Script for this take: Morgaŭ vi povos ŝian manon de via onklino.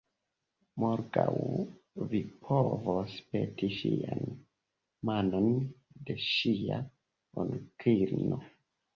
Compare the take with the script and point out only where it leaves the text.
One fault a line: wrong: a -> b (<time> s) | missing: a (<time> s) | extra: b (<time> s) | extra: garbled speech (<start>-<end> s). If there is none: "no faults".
extra: peti (3.4 s)
wrong: via -> ŝia (6.3 s)